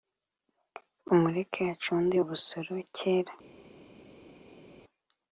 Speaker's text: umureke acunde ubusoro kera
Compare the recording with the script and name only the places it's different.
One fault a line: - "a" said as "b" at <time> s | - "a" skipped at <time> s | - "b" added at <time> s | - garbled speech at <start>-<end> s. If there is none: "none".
none